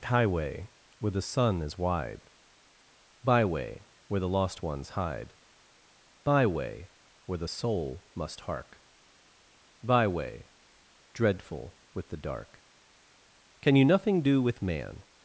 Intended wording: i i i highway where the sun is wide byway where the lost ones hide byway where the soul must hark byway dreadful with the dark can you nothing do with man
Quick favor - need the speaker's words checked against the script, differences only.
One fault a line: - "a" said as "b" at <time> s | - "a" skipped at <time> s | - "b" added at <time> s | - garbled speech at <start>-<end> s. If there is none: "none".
- "i i i" skipped at 0.0 s